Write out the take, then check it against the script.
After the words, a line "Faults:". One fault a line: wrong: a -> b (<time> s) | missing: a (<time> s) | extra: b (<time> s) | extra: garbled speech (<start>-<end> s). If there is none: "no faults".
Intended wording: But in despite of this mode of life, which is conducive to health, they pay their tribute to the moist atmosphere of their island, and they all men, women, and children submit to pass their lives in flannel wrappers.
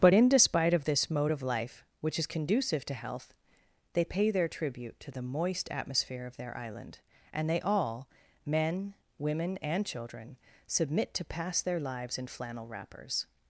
But in despite of this mode of life, which is conducive to health, they pay their tribute to the moist atmosphere of their island, and they all men, women, and children submit to pass their lives in flannel wrappers.
Faults:
no faults